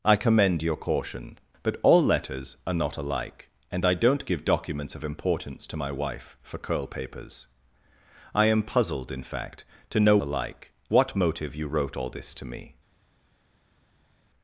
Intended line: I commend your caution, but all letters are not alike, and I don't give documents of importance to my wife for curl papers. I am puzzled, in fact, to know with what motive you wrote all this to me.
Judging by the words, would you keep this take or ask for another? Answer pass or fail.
fail